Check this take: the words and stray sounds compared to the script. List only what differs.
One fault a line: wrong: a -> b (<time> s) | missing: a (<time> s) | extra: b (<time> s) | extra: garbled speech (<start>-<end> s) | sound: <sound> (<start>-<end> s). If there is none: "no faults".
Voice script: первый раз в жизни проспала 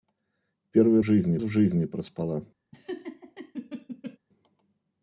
wrong: раз -> жизни (1.0 s)
sound: laugh (2.7-4.2 s)